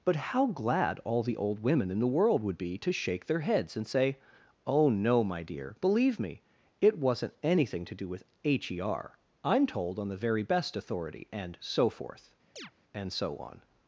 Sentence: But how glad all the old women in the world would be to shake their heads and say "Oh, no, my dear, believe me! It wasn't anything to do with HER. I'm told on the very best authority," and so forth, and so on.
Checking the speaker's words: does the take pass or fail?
pass